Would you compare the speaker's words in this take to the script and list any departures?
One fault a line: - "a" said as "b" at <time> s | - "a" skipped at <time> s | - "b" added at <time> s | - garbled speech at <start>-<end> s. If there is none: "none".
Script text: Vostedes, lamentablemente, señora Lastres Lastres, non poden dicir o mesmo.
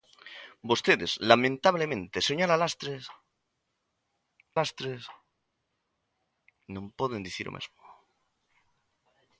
none